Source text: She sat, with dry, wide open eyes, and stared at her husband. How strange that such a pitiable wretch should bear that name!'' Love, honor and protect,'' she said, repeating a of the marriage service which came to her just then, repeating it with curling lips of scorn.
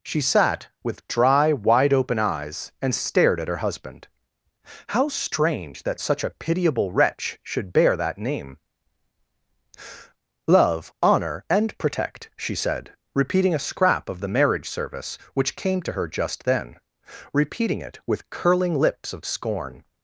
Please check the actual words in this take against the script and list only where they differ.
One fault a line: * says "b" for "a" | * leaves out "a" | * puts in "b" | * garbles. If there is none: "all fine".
* puts in "scrap"